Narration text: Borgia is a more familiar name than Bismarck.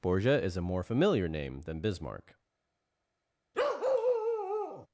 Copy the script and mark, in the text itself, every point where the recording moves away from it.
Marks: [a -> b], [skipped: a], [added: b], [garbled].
Borgia is a more familiar name than Bismarck.